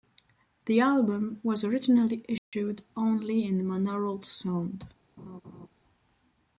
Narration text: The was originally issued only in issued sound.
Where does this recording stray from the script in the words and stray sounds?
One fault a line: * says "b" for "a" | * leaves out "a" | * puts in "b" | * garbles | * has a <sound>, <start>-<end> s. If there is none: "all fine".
* puts in "album"
* has a dropout, 2.4-2.5 s
* says "monaural" for "issued"
* has a laugh, 5.2-5.7 s